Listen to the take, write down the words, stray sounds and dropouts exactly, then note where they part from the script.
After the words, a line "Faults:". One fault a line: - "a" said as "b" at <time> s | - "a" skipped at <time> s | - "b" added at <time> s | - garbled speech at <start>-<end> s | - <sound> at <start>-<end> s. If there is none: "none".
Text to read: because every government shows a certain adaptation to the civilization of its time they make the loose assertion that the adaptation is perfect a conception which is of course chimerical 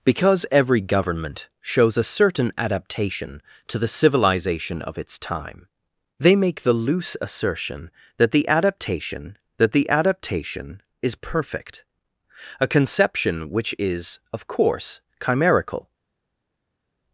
because every government shows a certain adaptation to the civilization of its time they make the loose assertion that the adaptation that the adaptation is perfect a conception which is of course chimerical
Faults:
- "that the adaptation" added at 9.6 s